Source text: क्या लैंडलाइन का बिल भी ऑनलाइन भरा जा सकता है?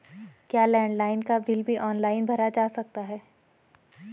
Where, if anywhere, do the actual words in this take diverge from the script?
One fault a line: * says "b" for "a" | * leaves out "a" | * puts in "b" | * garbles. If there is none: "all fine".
all fine